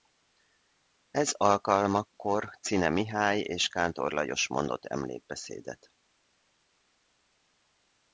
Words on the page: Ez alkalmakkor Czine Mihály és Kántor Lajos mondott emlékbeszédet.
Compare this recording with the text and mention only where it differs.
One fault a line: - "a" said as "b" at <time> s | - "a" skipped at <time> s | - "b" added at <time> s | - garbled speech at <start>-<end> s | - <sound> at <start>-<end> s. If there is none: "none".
none